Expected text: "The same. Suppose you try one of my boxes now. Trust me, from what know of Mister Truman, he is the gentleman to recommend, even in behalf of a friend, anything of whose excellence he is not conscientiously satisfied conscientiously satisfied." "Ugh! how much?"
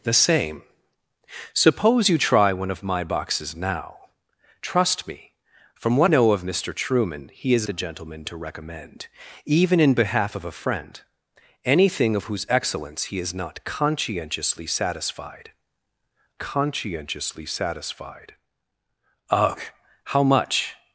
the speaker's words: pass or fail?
pass